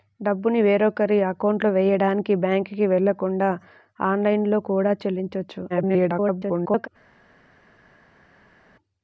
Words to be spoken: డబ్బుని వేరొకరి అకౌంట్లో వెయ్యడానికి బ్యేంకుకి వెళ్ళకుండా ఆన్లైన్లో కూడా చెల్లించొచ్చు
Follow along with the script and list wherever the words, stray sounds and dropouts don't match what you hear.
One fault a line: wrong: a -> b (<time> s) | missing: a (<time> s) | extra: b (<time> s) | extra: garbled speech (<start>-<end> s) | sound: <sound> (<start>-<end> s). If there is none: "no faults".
extra: garbled speech (5.7-6.9 s)